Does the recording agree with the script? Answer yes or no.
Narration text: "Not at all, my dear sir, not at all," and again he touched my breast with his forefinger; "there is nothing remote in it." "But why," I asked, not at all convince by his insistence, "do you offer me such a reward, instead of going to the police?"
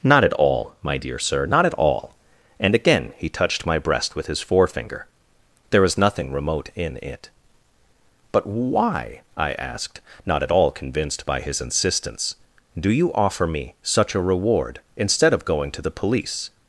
no